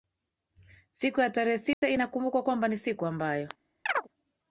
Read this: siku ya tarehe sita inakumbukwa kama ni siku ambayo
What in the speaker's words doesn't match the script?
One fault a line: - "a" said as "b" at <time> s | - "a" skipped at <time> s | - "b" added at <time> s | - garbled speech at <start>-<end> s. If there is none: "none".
- "kama" said as "kwamba" at 2.4 s